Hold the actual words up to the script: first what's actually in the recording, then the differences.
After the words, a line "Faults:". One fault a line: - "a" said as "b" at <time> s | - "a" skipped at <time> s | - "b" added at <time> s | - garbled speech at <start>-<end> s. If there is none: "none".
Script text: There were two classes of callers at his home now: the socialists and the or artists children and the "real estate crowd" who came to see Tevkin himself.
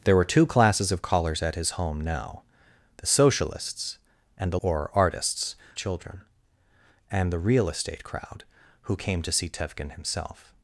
There were two classes of callers at his home now: the socialists and the or artists children and the "real estate crowd" who came to see Tevkin himself.
Faults:
none